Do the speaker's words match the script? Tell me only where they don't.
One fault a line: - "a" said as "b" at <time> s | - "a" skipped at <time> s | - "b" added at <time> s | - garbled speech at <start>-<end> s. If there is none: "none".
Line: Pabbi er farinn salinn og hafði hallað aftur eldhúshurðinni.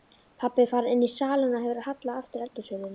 - "inní" added at 0.9 s
- "hafði" said as "hefur" at 1.7 s